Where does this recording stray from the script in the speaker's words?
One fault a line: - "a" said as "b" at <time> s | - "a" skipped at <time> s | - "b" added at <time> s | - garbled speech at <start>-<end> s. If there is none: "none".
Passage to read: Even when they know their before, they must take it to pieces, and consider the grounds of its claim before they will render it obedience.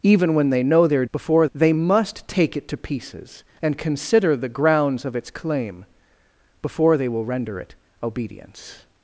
none